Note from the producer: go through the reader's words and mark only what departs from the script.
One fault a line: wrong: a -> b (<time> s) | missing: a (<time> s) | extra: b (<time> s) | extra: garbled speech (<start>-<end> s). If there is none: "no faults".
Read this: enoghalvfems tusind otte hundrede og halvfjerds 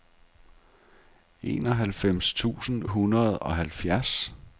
missing: otte (2.8 s)